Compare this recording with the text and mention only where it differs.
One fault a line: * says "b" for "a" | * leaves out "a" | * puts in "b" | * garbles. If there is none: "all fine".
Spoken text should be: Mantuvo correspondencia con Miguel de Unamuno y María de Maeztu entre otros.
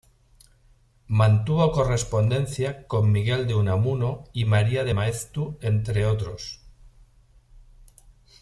all fine